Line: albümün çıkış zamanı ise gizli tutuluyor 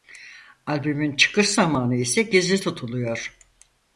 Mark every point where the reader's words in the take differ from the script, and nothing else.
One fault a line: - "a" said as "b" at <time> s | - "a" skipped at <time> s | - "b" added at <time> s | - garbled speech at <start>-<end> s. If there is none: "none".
none